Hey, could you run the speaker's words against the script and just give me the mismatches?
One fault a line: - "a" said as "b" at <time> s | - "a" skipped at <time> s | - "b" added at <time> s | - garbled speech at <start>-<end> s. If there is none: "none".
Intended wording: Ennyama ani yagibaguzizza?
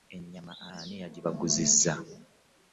none